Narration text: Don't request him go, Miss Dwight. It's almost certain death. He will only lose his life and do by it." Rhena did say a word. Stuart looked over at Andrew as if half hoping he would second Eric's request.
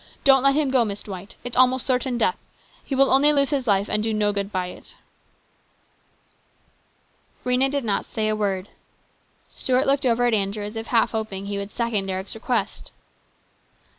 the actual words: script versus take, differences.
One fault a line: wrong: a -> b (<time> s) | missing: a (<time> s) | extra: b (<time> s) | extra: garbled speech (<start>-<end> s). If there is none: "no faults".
wrong: request -> let (0.4 s)
extra: no good (4.1 s)
extra: not (7.9 s)